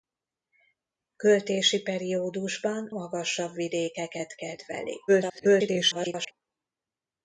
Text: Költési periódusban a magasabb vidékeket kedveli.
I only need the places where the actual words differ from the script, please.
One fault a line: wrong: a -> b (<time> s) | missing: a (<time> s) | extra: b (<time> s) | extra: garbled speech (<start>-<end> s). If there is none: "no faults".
missing: a (2.9 s)
extra: garbled speech (5.1-6.3 s)